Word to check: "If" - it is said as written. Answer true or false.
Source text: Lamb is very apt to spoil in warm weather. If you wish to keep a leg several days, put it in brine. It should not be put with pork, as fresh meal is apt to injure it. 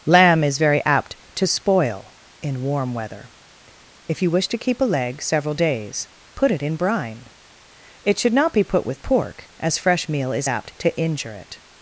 true